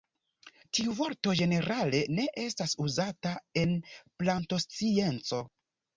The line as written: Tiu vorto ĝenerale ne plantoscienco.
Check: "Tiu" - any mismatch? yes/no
no